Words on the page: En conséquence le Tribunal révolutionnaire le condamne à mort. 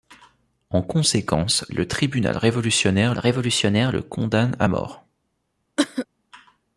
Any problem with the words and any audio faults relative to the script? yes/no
yes